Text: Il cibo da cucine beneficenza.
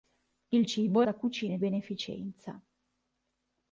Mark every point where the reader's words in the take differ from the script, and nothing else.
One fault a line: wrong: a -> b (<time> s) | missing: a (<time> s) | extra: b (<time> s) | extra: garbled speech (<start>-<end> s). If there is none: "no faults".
no faults